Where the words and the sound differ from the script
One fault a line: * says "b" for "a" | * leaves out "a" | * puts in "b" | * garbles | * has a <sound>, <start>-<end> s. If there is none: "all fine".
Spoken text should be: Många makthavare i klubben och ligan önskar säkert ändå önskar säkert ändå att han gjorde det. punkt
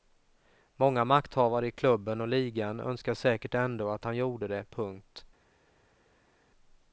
* leaves out "önskar säkert ändå"